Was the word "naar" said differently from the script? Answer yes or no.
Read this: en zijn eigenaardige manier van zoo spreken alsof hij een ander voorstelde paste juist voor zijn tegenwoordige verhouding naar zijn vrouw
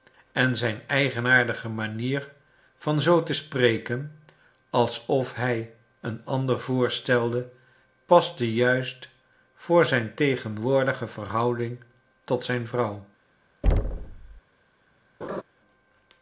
yes